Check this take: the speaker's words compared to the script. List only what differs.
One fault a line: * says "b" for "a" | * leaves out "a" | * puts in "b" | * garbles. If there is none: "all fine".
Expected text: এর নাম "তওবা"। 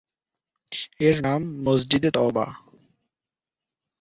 * puts in "মসজিদে"